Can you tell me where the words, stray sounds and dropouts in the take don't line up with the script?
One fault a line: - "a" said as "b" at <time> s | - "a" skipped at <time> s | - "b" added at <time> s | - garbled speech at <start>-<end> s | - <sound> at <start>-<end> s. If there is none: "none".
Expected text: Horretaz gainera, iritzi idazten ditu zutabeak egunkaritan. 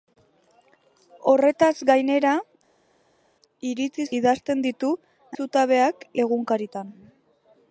none